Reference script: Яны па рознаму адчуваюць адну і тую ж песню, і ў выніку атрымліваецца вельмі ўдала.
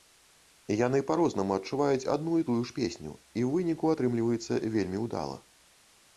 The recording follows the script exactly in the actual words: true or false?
true